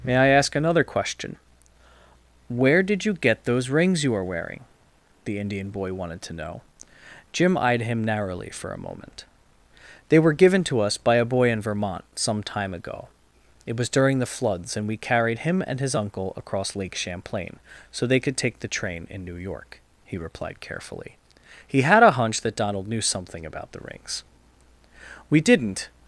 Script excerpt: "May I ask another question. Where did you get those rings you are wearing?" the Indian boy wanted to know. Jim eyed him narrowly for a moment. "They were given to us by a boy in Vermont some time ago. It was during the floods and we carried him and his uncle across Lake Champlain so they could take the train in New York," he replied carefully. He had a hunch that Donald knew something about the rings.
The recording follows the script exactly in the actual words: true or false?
false